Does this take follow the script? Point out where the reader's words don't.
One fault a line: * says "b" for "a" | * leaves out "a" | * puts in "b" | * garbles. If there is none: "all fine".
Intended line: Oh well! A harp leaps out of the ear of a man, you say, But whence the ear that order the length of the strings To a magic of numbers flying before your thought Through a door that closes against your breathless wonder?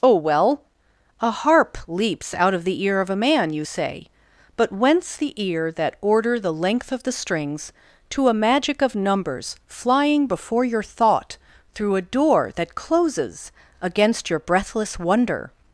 all fine